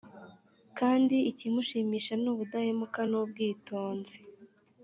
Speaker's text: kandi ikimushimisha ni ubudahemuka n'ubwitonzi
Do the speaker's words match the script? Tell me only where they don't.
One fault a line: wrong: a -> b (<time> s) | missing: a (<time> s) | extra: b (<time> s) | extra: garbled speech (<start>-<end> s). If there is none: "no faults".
no faults